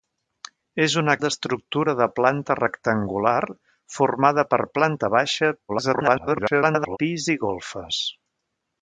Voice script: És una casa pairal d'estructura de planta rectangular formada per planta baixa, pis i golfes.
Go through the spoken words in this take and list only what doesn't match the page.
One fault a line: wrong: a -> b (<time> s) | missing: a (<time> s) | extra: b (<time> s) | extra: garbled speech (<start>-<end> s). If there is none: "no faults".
missing: casa pairal (1.1 s)
extra: garbled speech (5.7-7.0 s)